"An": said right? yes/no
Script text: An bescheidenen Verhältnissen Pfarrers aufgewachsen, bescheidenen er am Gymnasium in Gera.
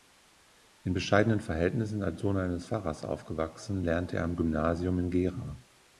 no